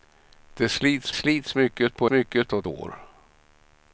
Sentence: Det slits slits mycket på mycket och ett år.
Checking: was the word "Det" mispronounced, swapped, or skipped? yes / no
no